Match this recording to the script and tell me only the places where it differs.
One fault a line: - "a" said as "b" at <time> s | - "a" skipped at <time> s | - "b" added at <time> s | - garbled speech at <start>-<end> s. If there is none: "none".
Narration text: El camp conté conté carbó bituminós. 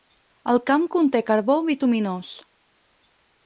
- "conté" skipped at 1.2 s